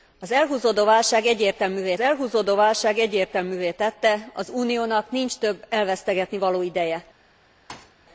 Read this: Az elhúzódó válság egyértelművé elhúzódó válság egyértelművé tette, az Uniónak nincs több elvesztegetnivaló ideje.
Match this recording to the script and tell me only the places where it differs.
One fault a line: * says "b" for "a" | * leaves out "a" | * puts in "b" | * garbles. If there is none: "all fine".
all fine